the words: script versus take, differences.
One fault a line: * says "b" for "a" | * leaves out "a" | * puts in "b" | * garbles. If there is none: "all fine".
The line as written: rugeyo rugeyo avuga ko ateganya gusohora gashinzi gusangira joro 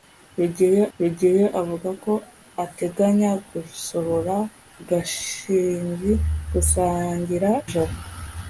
all fine